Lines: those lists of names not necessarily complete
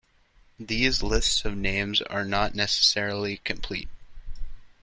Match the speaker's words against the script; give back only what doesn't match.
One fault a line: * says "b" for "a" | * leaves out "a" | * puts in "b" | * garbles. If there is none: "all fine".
* says "these" for "those"
* puts in "are"